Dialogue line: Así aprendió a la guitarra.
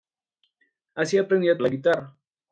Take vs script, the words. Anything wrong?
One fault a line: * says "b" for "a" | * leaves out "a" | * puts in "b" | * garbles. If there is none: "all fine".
all fine